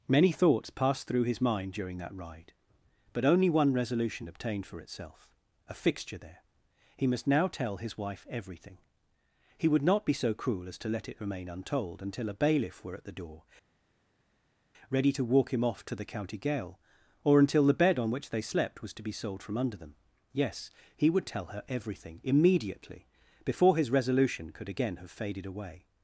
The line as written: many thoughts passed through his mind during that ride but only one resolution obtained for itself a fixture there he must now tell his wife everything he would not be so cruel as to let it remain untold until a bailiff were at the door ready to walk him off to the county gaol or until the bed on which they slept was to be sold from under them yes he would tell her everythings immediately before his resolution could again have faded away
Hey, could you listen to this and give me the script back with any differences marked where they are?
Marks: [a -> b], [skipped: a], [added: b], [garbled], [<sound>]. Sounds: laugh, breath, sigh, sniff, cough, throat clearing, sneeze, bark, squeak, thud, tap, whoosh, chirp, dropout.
many thoughts passed through his mind during that ride but only one resolution obtained for itself a fixture there he must now tell his wife everything he would not be so cruel as to let it remain untold until a bailiff were at the door ready to walk him off to the county gaol or until the bed on which they slept was to be sold from under them yes he would tell her [everythings -> everything] immediately before his resolution could again have faded away